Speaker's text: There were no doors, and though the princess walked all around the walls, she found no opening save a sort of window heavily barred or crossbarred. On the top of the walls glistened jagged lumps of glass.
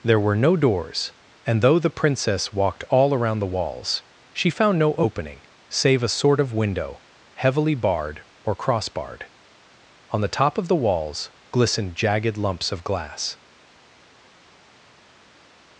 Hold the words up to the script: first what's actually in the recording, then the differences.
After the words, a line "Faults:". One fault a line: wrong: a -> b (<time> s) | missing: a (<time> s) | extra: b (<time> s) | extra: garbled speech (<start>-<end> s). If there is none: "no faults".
There were no doors, and though the princess walked all around the walls, she found no opening save a sort of window heavily barred or crossbarred. On the top of the walls glistened jagged lumps of glass.
Faults:
no faults